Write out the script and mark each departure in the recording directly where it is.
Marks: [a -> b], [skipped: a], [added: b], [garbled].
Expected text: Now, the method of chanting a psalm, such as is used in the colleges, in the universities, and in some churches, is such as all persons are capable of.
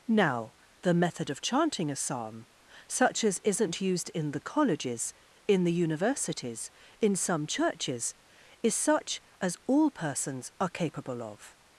Now, the method of chanting a psalm, such as [is -> isn't] used in the colleges, in the universities, [skipped: and] in some churches, is such as all persons are capable of.